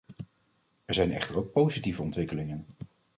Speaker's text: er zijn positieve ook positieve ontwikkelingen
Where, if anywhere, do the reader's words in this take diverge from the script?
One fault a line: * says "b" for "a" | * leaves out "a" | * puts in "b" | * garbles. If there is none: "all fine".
* says "echter" for "positieve"